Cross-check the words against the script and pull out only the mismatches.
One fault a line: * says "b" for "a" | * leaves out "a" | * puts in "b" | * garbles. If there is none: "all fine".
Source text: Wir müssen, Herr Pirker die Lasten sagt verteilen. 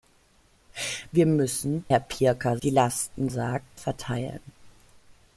all fine